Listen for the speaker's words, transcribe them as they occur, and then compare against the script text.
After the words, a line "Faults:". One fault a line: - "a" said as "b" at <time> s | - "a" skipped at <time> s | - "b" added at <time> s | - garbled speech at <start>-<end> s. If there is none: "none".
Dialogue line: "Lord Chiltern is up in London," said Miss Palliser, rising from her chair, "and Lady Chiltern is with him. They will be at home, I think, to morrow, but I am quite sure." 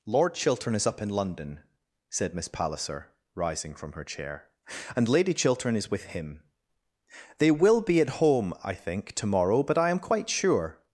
"Lord Chiltern is up in London," said Miss Palliser, rising from her chair, "and Lady Chiltern is with him. They will be at home, I think, to morrow, but I am quite sure."
Faults:
none